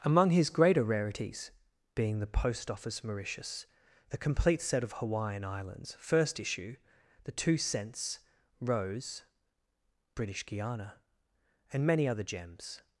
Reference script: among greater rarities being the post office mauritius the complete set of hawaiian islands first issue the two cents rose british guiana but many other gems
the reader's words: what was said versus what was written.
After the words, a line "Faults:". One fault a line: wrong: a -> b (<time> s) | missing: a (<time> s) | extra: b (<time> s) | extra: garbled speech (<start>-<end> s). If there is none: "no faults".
among his greater rarities being the post office mauritius the complete set of hawaiian islands first issue the two cents rose british guiana and many other gems
Faults:
extra: his (0.3 s)
wrong: but -> and (11.7 s)